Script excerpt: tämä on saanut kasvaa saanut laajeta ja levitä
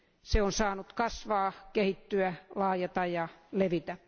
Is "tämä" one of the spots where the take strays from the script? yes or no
yes